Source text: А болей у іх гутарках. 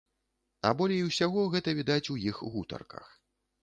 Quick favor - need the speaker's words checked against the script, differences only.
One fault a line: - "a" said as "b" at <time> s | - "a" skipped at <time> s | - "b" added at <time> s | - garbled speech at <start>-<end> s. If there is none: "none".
- "усяго гэта відаць" added at 1.1 s